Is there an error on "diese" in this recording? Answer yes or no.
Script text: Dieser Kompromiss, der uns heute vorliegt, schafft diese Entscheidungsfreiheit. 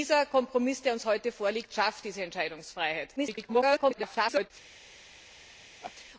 no